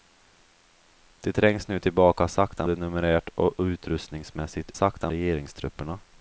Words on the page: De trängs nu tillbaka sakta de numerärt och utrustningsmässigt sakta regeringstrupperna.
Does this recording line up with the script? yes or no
yes